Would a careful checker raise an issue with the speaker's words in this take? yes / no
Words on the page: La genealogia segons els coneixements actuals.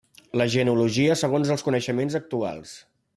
no